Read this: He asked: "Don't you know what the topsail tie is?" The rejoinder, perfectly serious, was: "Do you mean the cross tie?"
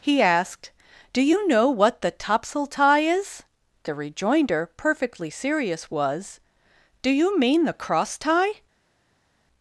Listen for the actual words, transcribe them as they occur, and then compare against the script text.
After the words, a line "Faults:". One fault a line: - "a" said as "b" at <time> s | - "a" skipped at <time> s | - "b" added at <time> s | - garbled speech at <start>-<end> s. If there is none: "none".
He asked: "Do you know what the topsail tie is?" The rejoinder, perfectly serious, was: "Do you mean the cross tie?"
Faults:
- "Don't" said as "Do" at 1.1 s